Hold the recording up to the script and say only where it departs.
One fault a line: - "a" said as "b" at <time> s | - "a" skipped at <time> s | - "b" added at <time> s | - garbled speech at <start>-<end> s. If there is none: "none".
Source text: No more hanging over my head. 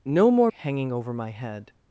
none